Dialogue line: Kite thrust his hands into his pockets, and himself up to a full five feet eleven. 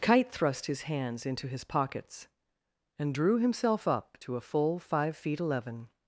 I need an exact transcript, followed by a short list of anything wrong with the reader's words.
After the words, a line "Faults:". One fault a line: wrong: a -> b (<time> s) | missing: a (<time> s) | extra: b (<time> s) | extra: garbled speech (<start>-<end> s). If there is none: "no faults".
Kite thrust his hands into his pockets, and drew himself up to a full five feet eleven.
Faults:
extra: drew (3.1 s)